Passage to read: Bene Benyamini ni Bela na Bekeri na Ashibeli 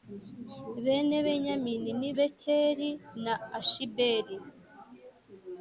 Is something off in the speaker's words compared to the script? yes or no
yes